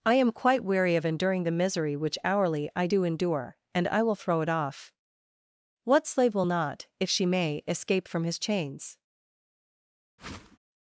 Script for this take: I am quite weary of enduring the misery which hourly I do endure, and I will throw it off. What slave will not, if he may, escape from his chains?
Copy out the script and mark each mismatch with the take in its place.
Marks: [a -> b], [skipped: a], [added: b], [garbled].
I am quite weary of enduring the misery which hourly I do endure, and I will throw it off. What slave will not, if [he -> she] may, escape from his chains?